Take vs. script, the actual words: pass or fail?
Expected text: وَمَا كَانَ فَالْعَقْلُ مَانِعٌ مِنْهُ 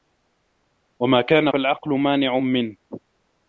pass